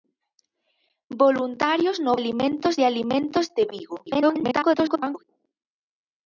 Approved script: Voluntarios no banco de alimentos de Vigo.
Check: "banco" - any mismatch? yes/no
yes